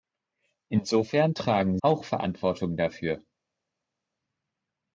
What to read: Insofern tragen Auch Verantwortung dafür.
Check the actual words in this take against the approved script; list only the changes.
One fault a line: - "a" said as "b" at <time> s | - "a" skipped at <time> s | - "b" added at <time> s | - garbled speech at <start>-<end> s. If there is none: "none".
none